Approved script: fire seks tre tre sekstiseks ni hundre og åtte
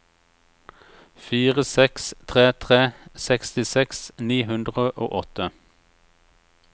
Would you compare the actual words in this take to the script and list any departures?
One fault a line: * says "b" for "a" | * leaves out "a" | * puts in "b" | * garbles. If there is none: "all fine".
all fine